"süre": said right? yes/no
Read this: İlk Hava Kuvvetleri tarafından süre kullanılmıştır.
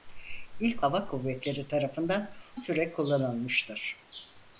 yes